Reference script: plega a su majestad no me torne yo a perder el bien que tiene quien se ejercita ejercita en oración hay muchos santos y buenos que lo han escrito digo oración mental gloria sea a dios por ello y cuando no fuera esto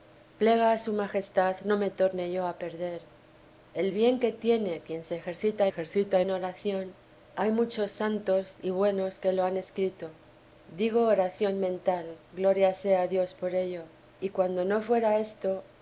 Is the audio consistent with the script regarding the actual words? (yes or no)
yes